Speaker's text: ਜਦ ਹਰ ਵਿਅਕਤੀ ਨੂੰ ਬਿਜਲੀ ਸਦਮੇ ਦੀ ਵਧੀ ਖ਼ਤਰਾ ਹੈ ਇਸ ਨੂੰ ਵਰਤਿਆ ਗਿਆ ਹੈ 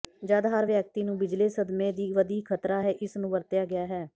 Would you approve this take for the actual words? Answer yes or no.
yes